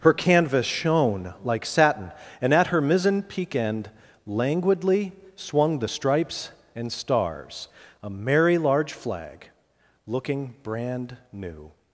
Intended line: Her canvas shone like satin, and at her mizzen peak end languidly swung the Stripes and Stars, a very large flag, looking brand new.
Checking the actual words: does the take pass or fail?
fail